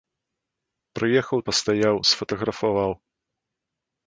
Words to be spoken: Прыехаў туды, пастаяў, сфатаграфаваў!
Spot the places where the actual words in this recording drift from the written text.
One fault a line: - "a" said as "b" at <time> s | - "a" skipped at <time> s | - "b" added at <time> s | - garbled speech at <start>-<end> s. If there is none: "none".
- "туды" skipped at 1.4 s